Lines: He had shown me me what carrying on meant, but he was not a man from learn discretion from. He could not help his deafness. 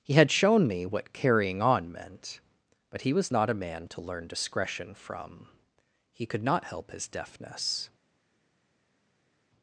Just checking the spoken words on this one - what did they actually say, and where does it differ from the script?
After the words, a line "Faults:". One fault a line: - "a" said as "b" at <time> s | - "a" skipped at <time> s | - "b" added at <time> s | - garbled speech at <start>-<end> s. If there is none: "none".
He had shown me what carrying on meant, but he was not a man to learn discretion from. He could not help his deafness.
Faults:
- "me" skipped at 0.8 s
- "from" said as "to" at 3.9 s